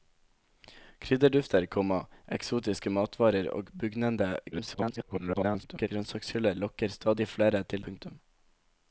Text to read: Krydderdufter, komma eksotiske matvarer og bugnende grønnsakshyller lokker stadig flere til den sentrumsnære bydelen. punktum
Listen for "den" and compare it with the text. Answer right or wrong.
wrong